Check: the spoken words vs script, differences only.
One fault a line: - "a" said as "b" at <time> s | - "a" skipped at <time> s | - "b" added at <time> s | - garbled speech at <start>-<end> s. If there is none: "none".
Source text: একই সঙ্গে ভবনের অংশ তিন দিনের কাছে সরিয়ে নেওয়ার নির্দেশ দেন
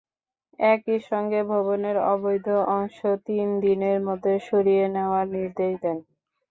- "অবৈধ" added at 2.1 s
- "কাছে" said as "মধ্যে" at 4.1 s